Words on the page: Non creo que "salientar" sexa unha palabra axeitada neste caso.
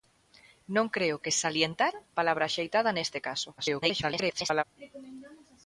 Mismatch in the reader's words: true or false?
true